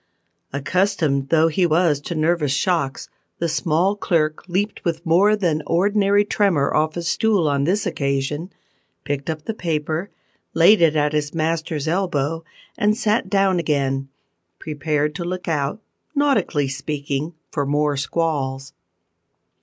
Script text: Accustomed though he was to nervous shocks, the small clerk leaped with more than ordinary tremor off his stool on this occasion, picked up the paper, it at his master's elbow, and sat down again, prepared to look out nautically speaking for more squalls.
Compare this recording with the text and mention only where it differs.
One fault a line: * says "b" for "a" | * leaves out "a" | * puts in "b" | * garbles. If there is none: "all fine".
* puts in "laid"